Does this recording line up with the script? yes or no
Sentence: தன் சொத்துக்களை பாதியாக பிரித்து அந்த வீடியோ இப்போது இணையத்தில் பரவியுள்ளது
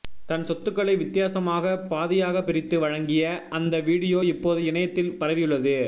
no